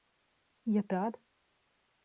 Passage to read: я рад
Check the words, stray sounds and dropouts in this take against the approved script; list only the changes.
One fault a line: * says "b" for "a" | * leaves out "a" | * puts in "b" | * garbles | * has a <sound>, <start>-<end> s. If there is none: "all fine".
all fine